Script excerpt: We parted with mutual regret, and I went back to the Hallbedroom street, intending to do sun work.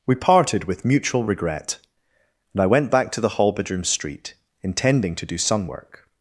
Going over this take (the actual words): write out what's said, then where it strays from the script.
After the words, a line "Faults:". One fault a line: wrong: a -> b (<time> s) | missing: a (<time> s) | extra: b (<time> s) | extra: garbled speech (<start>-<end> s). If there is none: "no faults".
We parted with mutual regret, and I went back to the Hallbedroom street, intending to do sun work.
Faults:
no faults